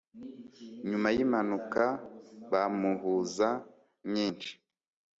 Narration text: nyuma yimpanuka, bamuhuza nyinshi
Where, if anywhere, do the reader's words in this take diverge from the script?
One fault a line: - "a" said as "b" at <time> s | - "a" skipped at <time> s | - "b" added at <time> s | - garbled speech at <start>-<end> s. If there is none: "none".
none